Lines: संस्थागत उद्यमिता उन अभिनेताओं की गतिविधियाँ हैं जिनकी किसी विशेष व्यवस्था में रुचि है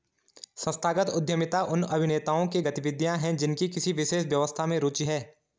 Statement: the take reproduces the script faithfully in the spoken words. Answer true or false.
true